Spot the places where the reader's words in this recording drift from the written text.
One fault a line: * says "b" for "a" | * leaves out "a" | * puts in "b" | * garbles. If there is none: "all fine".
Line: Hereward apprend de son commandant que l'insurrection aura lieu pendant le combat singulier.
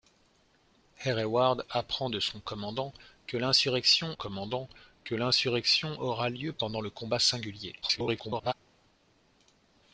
* puts in "commandant que l'insurrection"
* garbles